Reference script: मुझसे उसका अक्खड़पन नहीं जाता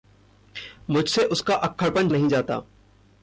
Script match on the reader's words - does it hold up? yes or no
yes